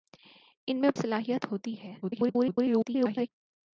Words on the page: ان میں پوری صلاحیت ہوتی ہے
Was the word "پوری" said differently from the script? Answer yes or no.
yes